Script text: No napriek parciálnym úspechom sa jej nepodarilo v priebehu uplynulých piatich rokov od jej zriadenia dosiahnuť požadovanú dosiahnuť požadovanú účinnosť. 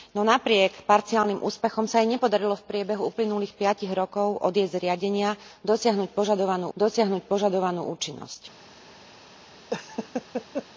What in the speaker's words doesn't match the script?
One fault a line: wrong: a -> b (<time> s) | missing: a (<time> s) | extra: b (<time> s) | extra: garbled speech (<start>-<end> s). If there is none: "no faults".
no faults